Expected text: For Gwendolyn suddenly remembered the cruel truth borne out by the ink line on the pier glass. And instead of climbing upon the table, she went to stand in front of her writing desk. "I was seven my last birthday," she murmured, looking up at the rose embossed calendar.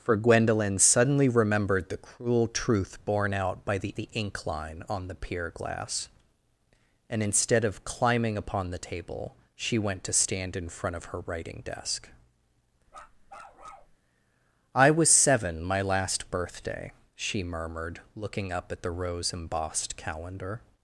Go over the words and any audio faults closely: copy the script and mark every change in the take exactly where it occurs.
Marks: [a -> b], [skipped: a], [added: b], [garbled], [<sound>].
For Gwendolyn suddenly remembered the cruel truth borne out by the [added: the] ink line on the pier glass. And instead of climbing upon the table, she went to stand in front of her writing desk. [bark] "I was seven my last birthday," she murmured, looking up at the rose embossed calendar.